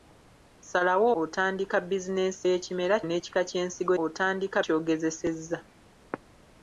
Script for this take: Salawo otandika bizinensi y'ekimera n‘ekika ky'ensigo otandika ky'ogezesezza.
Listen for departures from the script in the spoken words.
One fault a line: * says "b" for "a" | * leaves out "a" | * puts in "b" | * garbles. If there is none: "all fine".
all fine